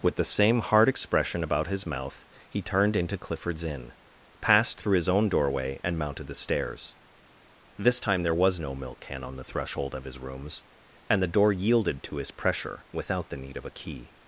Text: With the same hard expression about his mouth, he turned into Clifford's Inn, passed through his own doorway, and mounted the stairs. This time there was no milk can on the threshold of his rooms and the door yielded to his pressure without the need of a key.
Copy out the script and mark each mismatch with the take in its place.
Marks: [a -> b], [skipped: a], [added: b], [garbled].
With the same hard expression about his mouth, he turned into Clifford's Inn, passed through his own doorway, and mounted the stairs. This time there was no milk can on the threshold of his rooms and the door yielded to his pressure without the need of a key.